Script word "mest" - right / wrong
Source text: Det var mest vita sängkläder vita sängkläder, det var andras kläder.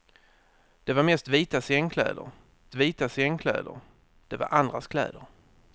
right